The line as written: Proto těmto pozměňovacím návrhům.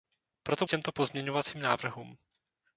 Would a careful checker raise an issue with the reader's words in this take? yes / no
no